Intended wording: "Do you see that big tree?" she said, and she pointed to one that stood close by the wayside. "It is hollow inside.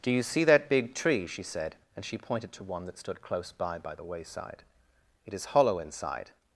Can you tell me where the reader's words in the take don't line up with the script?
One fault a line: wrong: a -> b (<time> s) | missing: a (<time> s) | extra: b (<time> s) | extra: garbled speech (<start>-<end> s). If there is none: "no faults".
extra: by (3.8 s)